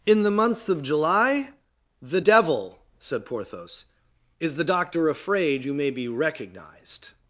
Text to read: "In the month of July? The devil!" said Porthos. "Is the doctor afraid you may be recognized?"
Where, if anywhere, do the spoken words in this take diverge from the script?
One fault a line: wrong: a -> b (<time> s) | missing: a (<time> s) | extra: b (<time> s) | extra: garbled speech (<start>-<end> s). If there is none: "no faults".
no faults